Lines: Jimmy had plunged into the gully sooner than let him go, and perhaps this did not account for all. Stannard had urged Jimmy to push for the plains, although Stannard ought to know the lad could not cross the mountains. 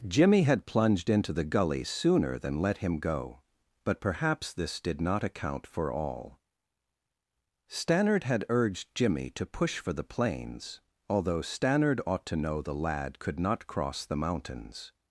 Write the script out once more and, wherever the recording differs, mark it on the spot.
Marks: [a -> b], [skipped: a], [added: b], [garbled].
Jimmy had plunged into the gully sooner than let him go, [and -> but] perhaps this did not account for all. Stannard had urged Jimmy to push for the plains, although Stannard ought to know the lad could not cross the mountains.